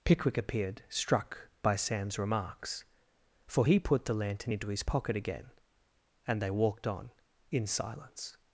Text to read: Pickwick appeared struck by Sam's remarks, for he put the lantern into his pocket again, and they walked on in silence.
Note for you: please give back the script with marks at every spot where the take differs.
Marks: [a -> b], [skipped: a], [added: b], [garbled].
Pickwick appeared struck by Sam's remarks, for he put the lantern into his pocket again, and they walked on in silence.